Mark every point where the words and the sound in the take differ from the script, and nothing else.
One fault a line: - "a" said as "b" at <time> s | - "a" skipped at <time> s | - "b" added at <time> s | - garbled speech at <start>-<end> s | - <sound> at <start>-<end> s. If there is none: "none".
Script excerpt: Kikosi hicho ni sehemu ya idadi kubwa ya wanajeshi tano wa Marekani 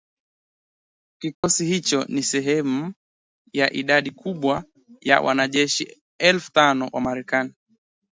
- dropout at 1.3-1.4 s
- "elfu" added at 6.2 s